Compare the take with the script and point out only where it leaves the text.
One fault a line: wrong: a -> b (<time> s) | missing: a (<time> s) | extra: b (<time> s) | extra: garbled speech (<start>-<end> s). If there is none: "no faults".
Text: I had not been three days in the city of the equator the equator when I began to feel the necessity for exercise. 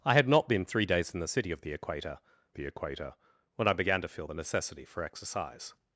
no faults